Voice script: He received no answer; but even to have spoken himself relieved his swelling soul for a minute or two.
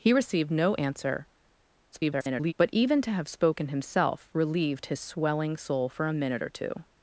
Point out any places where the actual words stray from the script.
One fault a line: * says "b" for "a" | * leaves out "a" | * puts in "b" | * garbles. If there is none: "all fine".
* garbles